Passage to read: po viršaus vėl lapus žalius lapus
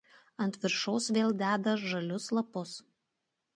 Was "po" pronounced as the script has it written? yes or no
no